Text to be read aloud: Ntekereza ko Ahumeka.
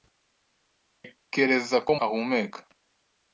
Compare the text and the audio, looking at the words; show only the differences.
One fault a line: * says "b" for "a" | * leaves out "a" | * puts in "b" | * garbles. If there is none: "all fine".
all fine